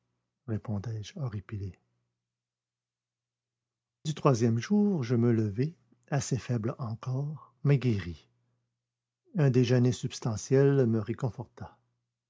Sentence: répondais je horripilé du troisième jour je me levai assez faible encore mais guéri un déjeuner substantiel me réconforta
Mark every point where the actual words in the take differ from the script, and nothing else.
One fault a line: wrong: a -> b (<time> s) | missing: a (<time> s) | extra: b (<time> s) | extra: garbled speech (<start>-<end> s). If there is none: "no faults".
no faults